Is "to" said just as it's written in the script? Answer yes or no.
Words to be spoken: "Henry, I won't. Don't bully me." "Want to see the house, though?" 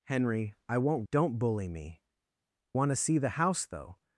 yes